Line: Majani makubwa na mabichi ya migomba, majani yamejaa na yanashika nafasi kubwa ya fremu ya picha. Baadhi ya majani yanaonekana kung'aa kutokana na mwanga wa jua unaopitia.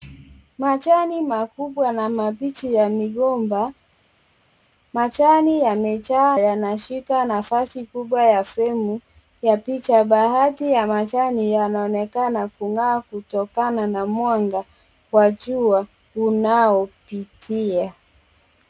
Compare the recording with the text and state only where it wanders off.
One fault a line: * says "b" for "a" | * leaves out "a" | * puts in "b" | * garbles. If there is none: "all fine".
* leaves out "na"